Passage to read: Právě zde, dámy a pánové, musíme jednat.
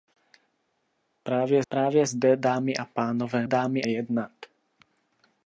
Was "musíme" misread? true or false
true